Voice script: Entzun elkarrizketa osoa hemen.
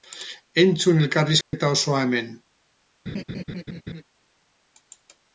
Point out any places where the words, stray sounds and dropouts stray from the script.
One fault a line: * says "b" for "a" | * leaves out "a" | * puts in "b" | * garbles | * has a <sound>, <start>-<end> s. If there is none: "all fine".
* has a dropout, 1.4-1.5 s
* has a laugh, 3.1-4.0 s